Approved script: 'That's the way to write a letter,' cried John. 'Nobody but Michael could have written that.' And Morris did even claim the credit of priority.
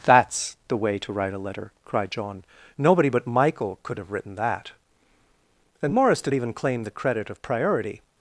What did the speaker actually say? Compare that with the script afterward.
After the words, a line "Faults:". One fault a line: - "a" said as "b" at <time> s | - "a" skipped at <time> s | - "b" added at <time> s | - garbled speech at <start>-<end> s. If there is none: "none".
'That's the way to write a letter,' cried John. 'Nobody but Michael could have written that.' And Morris did even claim the credit of priority.
Faults:
none